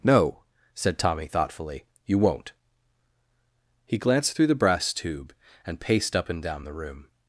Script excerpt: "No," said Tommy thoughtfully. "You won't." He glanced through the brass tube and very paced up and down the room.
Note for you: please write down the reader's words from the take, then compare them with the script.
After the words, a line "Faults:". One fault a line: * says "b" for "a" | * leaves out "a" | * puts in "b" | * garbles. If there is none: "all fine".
"No," said Tommy thoughtfully. "You won't." He glanced through the brass tube and paced up and down the room.
Faults:
* leaves out "very"